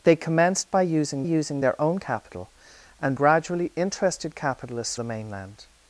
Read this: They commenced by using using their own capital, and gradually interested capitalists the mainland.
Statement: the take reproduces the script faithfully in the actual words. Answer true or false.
true